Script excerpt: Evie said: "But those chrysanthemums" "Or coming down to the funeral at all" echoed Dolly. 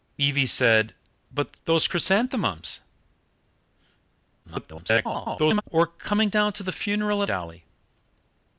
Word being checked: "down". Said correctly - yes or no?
yes